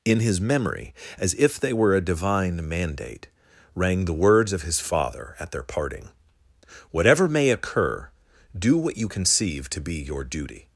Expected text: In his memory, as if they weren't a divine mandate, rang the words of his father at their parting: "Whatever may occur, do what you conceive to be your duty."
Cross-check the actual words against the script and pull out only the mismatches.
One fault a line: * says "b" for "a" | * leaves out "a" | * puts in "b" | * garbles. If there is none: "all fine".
* says "were" for "weren't"